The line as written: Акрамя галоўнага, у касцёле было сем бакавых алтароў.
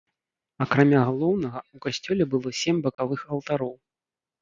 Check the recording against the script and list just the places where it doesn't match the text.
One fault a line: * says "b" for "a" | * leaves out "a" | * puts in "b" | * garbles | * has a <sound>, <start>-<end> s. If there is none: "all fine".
* has a dropout, 2.9-3.0 s